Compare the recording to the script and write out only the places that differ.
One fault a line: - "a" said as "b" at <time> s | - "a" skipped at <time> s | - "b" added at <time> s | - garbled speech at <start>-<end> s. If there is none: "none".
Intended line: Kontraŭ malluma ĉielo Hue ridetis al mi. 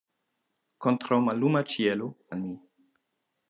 - "Hue ridetis" skipped at 2.1 s